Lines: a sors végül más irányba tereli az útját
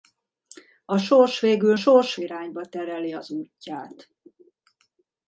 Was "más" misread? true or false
true